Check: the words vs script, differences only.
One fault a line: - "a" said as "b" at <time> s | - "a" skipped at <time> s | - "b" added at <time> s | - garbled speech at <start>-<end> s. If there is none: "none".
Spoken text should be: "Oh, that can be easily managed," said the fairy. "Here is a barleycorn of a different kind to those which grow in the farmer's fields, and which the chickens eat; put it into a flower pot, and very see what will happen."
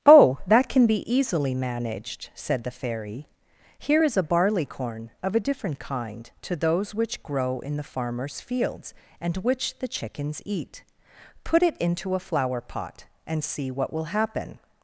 - "very" skipped at 13.4 s